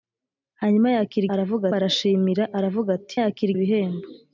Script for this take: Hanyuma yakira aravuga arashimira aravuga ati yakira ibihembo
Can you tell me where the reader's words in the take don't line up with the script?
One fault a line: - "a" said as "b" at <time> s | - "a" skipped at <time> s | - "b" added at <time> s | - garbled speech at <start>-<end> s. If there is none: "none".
none